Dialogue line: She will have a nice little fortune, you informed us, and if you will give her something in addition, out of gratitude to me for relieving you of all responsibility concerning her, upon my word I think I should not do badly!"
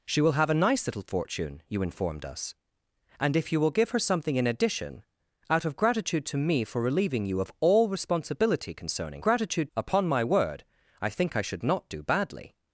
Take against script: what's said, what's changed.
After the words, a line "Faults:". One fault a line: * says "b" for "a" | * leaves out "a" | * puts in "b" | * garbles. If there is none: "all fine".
She will have a nice little fortune, you informed us, and if you will give her something in addition, out of gratitude to me for relieving you of all responsibility concerning gratitude, upon my word I think I should not do badly!"
Faults:
* says "gratitude" for "her"